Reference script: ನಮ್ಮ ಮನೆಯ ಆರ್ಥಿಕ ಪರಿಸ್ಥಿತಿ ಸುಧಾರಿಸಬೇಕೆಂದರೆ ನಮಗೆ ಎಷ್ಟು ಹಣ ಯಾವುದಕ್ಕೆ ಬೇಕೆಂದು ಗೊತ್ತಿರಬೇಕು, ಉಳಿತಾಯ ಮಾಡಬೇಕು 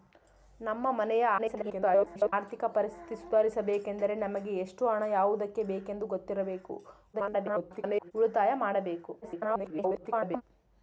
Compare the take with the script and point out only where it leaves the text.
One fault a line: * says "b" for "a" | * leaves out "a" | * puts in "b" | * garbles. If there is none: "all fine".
* garbles
* garbles
* garbles